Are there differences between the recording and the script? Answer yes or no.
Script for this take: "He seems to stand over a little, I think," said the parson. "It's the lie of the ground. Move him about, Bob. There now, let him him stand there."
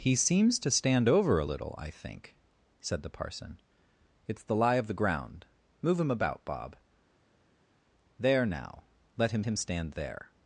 no